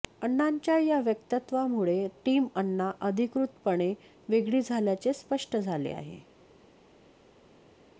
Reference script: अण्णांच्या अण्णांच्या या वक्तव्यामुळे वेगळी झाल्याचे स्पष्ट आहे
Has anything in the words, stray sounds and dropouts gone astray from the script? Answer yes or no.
yes